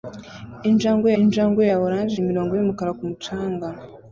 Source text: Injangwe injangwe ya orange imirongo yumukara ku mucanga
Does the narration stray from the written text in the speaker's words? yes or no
no